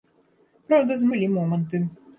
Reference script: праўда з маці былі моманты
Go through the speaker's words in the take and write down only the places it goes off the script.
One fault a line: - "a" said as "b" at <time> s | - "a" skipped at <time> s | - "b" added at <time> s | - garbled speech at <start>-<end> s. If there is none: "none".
- "маці" skipped at 1.1 s